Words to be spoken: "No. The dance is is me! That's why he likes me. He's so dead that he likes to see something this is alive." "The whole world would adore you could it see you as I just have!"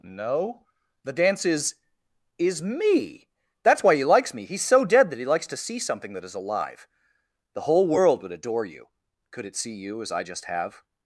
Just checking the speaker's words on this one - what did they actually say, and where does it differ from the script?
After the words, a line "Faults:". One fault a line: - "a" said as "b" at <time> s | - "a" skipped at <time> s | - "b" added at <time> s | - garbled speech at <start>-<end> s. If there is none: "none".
"No. The dance is is me! That's why he likes me. He's so dead that he likes to see something that is alive." "The whole world would adore you could it see you as I just have!"
Faults:
- "this" said as "that" at 6.1 s